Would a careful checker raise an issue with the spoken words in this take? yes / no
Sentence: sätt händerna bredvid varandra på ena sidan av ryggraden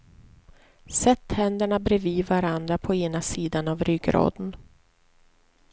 no